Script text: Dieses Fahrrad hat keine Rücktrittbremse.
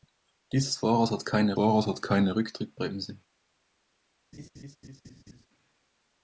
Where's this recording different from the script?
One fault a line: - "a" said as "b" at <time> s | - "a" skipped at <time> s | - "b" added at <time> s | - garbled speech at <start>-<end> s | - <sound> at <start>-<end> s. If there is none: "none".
- "Fahrrad hat keine" added at 1.5 s
- laugh at 4.3-5.5 s